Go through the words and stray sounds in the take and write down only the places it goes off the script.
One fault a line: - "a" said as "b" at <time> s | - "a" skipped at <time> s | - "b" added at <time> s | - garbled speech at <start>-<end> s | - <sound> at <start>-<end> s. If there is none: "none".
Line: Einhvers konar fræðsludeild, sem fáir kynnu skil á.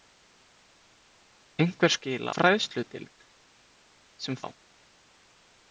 - "konar" said as "skil" at 2.0 s
- "fáir kynnu skil" skipped at 4.4 s